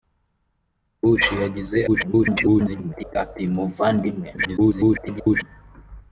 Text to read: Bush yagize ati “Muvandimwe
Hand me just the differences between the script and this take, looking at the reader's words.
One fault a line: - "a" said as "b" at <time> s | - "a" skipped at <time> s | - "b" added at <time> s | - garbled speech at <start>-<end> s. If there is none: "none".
- garbled speech at 1.9-3.2 s
- garbled speech at 4.4-5.4 s